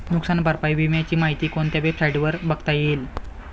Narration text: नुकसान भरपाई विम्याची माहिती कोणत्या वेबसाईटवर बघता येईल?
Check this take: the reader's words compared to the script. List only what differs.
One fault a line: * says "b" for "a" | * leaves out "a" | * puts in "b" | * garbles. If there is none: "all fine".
all fine